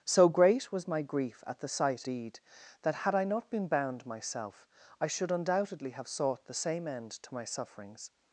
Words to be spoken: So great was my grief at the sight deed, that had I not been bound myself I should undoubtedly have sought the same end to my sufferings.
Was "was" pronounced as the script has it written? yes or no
yes